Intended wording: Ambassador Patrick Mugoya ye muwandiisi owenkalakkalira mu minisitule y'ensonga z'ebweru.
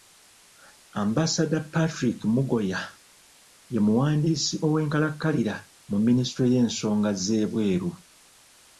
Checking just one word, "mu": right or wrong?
right